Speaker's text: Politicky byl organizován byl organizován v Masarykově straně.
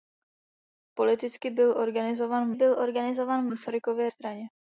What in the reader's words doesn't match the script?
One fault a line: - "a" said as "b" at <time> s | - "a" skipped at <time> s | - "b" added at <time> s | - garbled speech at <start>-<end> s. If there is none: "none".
none